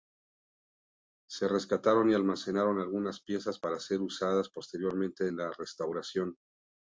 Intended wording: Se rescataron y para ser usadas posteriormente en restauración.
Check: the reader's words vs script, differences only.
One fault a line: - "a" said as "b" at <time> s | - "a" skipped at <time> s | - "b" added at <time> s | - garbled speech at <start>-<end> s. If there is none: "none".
- "almacenaron algunas piezas" added at 2.1 s
- "la" added at 5.4 s